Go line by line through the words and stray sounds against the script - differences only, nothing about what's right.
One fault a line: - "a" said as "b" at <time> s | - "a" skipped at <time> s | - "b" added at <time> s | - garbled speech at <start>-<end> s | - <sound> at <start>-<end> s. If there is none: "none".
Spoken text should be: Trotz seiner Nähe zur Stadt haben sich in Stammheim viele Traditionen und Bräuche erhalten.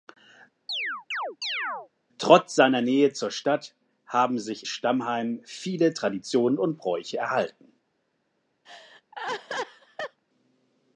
- chirp at 0.7-1.9 s
- "in" skipped at 4.7 s
- laugh at 8.6-10.2 s